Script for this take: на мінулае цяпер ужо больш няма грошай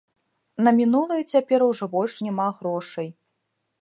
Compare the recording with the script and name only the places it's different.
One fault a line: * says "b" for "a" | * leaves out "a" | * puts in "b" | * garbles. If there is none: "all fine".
all fine